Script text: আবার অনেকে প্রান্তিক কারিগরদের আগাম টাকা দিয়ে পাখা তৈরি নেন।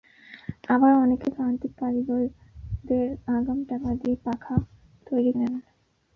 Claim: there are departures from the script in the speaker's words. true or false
false